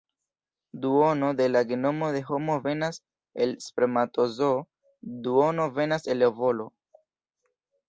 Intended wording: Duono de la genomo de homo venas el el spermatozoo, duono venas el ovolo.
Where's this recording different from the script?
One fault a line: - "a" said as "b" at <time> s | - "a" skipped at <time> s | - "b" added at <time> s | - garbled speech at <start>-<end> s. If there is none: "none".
- "el" skipped at 3.6 s